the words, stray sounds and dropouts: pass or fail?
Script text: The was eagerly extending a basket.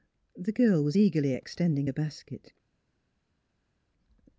fail